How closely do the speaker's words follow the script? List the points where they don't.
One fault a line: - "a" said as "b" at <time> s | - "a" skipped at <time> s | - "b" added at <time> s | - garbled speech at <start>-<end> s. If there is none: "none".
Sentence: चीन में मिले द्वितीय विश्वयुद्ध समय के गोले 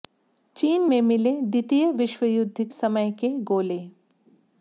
none